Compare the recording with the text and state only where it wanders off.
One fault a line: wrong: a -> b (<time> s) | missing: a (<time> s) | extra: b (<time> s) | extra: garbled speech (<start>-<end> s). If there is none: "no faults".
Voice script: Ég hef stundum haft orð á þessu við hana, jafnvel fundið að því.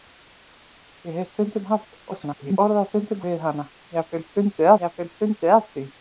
extra: garbled speech (2.1-2.6 s)
wrong: þessu -> stundum (2.9 s)
extra: jafnvel fundið (4.9 s)